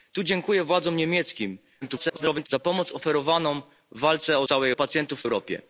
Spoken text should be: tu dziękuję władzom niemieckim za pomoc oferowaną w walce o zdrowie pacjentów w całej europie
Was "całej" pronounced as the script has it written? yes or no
no